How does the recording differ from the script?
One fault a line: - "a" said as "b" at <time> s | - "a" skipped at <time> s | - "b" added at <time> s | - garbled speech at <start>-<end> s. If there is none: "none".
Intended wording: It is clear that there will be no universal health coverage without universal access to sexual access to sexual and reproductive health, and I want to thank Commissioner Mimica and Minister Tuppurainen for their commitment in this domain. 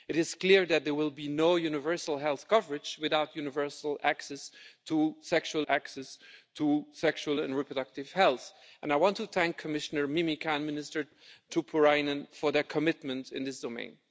none